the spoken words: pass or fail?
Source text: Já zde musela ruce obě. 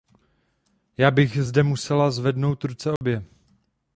fail